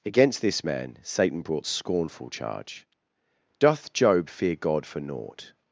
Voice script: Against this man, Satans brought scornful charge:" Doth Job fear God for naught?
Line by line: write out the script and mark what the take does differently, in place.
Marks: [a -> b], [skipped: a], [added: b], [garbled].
Against this man, [Satans -> Satan] brought scornful charge:" Doth Job fear God for naught?